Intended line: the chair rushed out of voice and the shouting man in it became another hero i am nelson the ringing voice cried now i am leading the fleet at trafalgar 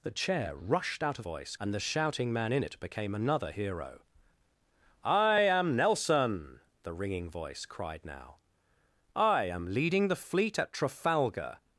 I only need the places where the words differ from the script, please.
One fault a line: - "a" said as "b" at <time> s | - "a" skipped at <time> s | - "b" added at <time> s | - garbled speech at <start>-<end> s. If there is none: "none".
none